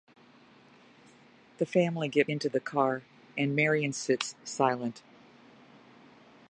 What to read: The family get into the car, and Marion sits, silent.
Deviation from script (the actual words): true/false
false